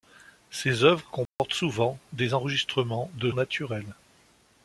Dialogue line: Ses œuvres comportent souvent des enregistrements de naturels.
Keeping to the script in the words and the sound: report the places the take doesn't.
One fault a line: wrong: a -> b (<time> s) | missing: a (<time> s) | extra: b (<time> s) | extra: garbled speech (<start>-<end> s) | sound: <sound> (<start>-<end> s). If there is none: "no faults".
sound: dropout (1.3-1.4 s)